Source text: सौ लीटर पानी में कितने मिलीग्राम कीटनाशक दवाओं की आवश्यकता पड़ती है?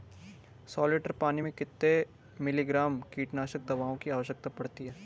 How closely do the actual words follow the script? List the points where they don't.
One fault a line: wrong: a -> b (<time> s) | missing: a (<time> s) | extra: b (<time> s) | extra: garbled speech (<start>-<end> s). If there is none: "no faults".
no faults